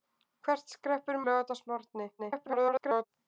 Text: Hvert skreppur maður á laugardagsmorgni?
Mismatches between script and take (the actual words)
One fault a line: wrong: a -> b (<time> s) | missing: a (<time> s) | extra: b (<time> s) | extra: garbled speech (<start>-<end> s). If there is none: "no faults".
missing: maður (1.2 s)
extra: garbled speech (2.2-3.1 s)